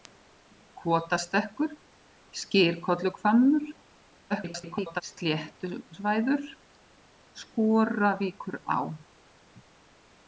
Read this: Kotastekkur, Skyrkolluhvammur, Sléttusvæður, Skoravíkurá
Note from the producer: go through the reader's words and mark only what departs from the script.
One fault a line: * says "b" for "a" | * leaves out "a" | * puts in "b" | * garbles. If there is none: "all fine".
* garbles